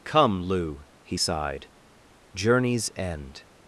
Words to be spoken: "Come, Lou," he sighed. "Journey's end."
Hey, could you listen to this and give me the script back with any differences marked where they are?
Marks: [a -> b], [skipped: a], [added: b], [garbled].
"Come, Lou," he sighed. "Journey's end."